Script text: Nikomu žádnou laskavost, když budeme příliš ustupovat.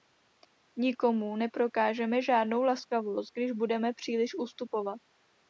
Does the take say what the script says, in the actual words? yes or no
no